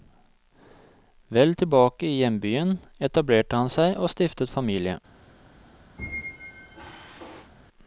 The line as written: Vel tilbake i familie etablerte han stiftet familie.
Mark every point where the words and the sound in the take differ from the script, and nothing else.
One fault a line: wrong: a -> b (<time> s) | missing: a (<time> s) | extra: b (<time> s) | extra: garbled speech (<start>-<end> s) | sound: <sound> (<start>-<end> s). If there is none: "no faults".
wrong: familie -> hjembyen (2.2 s)
extra: seg og (3.7 s)
sound: squeak (6.0-7.5 s)